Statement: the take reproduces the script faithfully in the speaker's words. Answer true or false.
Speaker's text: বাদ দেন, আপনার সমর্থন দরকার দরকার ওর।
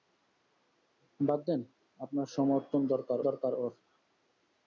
true